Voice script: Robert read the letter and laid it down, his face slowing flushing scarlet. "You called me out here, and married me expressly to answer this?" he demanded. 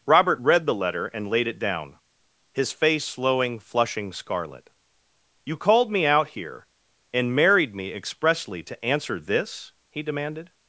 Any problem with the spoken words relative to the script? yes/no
no